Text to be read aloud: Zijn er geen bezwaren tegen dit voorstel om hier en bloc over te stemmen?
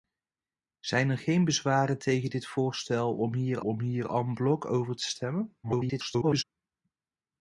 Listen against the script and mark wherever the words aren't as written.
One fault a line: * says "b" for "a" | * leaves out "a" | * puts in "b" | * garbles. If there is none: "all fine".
* puts in "om hier"
* garbles